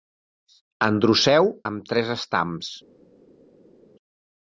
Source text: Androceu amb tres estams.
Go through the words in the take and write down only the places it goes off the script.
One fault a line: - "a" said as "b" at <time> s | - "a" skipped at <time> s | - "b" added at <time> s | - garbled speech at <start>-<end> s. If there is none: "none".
none